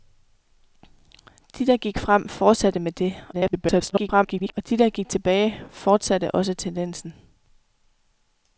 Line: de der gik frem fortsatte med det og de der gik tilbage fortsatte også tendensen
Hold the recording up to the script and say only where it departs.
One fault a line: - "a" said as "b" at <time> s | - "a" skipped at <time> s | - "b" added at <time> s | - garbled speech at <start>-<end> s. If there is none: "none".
- garbled speech at 3.3-4.5 s